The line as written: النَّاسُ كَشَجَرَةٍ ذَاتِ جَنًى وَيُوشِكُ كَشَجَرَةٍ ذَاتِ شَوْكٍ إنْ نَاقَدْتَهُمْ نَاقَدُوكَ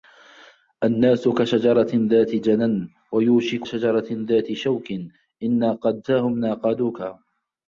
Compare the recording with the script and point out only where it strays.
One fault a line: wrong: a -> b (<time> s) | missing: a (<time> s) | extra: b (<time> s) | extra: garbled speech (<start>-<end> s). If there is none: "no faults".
no faults